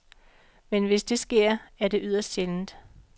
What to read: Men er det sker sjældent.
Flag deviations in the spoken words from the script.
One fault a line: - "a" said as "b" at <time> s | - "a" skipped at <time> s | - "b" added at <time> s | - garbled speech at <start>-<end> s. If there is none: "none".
- "hvis det sker" added at 0.8 s
- "sker" said as "yderst" at 2.0 s